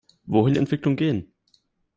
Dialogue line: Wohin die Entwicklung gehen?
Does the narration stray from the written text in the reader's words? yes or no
no